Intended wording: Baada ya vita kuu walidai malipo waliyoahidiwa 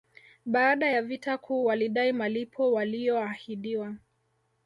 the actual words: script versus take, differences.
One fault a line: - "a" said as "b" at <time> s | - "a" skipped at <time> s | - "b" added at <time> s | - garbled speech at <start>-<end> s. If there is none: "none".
none